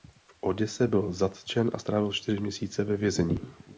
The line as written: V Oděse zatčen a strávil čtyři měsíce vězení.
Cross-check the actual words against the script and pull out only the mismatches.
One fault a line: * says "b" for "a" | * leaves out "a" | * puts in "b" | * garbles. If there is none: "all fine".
* puts in "byl"
* puts in "ve"